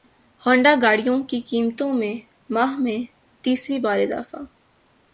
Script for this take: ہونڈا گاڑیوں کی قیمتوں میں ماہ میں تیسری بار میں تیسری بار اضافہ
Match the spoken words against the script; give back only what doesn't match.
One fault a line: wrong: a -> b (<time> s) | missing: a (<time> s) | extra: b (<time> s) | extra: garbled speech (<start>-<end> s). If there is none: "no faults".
missing: میں تیسری بار (4.0 s)